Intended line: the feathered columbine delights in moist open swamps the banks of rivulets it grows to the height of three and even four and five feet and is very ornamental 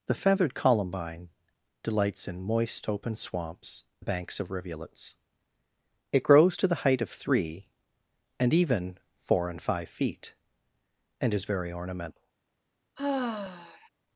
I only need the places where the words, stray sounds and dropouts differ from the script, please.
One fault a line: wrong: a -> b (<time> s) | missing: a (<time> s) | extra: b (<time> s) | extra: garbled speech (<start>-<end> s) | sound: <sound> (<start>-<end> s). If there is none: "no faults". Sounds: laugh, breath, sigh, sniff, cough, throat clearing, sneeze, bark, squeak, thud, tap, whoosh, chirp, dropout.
sound: sigh (13.0-13.9 s)